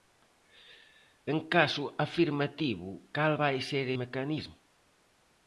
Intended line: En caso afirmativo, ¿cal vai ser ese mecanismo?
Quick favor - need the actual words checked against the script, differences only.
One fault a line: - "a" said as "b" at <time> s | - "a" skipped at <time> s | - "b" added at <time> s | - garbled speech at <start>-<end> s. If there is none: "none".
- "ese" skipped at 3.8 s